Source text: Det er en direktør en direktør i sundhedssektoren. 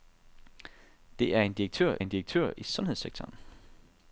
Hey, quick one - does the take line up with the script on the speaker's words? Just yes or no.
yes